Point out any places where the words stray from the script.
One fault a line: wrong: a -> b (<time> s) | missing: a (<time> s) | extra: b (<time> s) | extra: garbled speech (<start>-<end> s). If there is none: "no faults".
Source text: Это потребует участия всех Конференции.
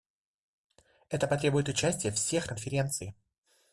no faults